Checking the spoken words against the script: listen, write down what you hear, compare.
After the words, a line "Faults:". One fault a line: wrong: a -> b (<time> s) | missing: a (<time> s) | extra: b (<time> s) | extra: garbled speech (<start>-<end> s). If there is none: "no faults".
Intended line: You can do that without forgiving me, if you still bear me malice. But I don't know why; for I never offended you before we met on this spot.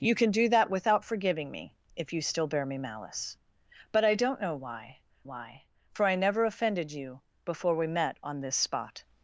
You can do that without forgiving me, if you still bear me malice. But I don't know why why; for I never offended you before we met on this spot.
Faults:
extra: why (5.2 s)